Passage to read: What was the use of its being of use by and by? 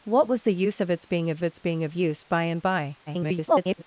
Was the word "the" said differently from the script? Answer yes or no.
no